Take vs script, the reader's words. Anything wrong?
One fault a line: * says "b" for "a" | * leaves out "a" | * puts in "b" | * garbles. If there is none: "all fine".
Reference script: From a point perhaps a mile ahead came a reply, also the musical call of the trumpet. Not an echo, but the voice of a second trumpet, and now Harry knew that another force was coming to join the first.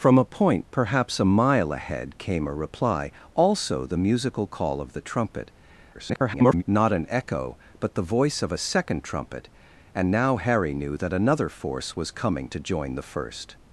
* garbles